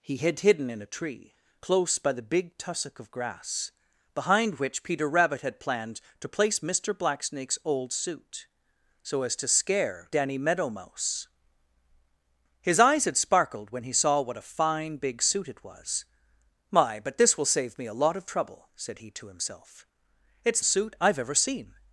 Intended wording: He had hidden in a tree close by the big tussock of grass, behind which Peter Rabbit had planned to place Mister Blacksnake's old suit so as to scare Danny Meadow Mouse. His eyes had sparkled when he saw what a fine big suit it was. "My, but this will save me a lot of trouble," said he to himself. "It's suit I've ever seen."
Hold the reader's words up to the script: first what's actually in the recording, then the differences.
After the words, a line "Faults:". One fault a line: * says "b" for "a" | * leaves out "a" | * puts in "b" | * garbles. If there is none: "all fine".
He had hidden in a tree close by the big tussock of grass, behind which Peter Rabbit had planned to place Mister Blacksnake's old suit so as to scare Danny Meadow Mouse. His eyes had sparkled when he saw what a fine big suit it was. "My, but this will save me a lot of trouble," said he to himself. "It's suit I've ever seen."
Faults:
all fine